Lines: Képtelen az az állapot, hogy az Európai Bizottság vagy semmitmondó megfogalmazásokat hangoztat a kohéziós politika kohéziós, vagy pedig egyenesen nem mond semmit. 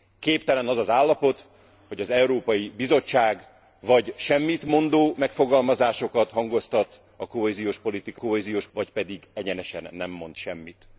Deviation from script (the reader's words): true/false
false